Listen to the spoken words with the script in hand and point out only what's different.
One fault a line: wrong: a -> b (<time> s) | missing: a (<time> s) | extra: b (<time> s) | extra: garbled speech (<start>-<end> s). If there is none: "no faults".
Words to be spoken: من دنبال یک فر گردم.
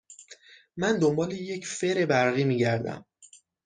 extra: برقی می (2.0 s)